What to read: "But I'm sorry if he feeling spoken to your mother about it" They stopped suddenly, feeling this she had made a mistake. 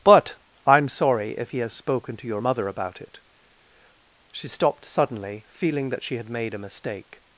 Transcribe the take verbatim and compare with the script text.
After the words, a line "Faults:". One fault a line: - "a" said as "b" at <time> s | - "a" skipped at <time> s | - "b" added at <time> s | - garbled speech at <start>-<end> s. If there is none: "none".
"But I'm sorry if he has spoken to your mother about it" She stopped suddenly, feeling that she had made a mistake.
Faults:
- "feeling" said as "has" at 1.6 s
- "They" said as "She" at 4.3 s
- "this" said as "that" at 5.9 s